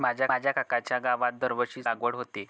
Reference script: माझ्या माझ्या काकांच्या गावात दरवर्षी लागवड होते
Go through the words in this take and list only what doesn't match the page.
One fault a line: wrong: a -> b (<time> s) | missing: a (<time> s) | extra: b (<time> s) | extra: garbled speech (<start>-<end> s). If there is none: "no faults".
no faults